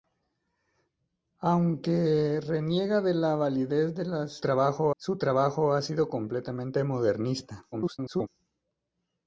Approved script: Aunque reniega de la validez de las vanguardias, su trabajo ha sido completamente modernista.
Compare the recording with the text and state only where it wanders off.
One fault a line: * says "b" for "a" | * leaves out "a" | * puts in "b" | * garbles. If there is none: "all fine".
* says "trabajo" for "vanguardias"
* garbles